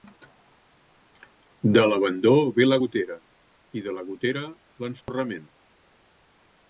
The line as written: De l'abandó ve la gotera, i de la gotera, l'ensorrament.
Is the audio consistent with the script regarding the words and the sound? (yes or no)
no